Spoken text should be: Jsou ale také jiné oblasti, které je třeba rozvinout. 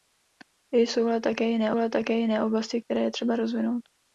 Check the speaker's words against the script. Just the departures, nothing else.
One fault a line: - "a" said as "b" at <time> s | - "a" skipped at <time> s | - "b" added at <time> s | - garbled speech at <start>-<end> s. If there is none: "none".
- "ale také jiné" added at 1.8 s